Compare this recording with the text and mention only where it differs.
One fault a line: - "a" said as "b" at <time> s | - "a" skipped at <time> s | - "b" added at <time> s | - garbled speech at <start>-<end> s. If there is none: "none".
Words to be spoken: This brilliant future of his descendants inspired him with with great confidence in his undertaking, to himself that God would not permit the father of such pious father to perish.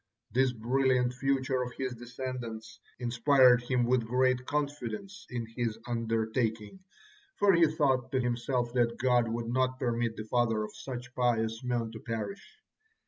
- "with" skipped at 4.1 s
- "for he thought" added at 7.4 s
- "father" said as "men" at 11.6 s